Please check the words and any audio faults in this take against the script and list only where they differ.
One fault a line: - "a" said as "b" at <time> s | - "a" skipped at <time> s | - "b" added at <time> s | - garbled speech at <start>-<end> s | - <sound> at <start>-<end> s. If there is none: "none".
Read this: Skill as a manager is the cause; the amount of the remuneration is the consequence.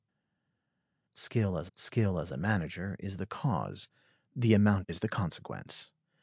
- "skill as" added at 1.8 s
- "of the remuneration" skipped at 4.9 s